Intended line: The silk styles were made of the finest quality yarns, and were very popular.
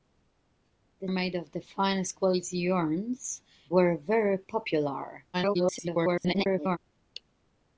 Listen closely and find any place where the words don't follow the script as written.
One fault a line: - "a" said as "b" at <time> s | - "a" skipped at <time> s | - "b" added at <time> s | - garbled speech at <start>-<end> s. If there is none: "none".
- "silk styles were" skipped at 1.1 s
- "and" skipped at 3.4 s
- garbled speech at 5.3-6.8 s